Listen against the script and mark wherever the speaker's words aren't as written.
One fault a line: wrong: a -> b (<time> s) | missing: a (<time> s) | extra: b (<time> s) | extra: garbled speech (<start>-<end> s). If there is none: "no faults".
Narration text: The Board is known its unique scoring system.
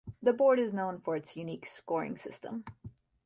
extra: for (1.0 s)